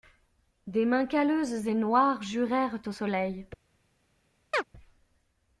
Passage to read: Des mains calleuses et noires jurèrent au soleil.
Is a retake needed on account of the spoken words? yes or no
no